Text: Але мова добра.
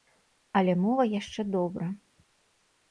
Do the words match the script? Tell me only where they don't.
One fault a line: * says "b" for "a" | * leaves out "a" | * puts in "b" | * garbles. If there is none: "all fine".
* puts in "яшчэ"